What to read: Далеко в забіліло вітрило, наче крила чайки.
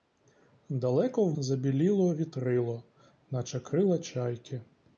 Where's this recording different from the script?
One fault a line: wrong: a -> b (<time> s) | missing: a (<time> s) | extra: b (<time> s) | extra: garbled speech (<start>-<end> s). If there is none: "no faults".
no faults